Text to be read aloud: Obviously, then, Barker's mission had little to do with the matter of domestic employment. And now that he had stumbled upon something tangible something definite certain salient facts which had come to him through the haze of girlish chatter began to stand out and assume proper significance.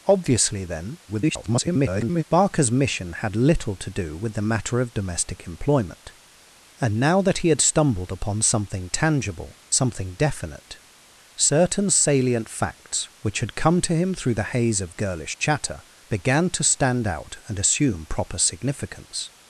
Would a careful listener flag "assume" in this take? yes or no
no